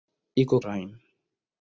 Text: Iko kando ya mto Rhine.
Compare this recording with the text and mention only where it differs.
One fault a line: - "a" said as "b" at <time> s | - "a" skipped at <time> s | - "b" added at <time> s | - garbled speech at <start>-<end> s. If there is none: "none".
- "kando ya mto" skipped at 0.6 s